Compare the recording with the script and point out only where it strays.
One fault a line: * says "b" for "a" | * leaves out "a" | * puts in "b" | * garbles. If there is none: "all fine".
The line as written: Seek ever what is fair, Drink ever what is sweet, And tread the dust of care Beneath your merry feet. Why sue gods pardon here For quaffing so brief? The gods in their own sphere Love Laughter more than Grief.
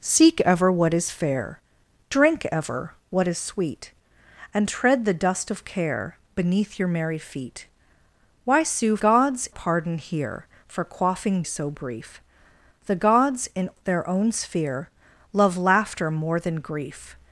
all fine